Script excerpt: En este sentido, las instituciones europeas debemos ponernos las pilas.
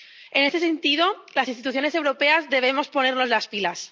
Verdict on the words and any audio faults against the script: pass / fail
pass